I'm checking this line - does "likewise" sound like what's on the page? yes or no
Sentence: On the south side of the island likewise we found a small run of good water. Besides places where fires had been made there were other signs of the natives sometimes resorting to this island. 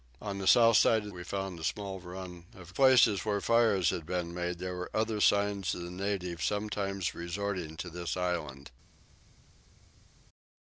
no